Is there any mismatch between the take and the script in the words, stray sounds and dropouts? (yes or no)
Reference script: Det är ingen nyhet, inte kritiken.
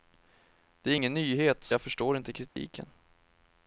yes